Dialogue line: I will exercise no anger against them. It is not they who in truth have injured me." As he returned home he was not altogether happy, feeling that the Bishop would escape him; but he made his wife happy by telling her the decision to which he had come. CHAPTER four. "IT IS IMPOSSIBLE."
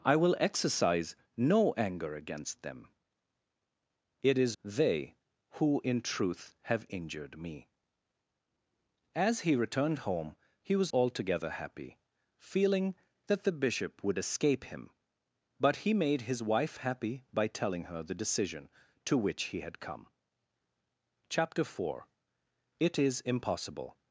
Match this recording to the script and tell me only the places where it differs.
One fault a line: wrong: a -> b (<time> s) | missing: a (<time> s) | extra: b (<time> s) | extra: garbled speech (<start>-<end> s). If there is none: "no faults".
missing: not (4.6 s)
missing: not (10.9 s)